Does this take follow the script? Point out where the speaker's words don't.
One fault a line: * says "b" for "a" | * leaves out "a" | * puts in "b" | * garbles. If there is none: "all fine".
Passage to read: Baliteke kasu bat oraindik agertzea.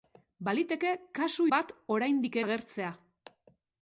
all fine